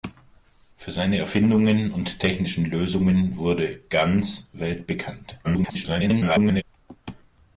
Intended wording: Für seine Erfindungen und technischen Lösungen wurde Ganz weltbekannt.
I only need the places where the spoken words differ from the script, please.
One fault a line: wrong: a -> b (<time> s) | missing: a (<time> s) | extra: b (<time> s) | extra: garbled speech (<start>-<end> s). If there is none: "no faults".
extra: garbled speech (5.4-6.6 s)